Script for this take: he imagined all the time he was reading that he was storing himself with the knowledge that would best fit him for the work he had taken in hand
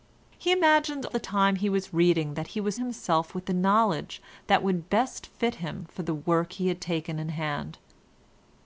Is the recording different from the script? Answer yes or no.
yes